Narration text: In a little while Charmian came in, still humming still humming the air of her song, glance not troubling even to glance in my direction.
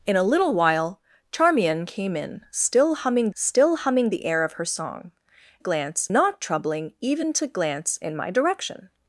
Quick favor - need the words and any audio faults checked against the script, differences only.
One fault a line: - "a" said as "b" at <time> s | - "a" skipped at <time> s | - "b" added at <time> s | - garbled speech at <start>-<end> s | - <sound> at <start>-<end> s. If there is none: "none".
none